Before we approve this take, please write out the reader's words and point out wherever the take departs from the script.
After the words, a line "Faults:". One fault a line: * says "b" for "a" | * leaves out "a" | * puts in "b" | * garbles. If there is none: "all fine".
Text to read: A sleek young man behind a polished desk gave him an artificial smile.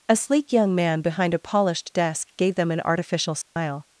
A sleek young man behind a polished desk gave them an artificial smile.
Faults:
* says "them" for "him"